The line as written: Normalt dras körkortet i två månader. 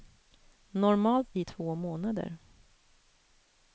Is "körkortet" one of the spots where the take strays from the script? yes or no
yes